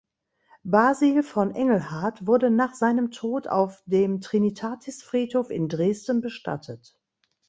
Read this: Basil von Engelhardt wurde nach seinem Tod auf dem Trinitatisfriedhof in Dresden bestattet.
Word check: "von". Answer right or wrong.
right